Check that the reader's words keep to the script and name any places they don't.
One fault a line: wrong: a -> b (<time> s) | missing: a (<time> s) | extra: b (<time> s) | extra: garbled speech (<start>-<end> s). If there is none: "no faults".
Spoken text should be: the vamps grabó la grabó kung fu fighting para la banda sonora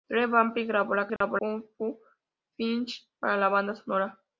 no faults